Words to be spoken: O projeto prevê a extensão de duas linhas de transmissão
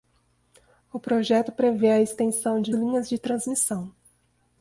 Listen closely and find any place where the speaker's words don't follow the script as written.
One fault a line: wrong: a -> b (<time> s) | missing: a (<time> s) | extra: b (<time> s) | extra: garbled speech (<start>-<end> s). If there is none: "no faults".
missing: duas (2.7 s)